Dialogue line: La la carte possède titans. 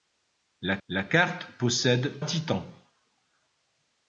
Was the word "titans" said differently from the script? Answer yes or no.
no